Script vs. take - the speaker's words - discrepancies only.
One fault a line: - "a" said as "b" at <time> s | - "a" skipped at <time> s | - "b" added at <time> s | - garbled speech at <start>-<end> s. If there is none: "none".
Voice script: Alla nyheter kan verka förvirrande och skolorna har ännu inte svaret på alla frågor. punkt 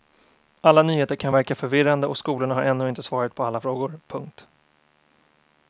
none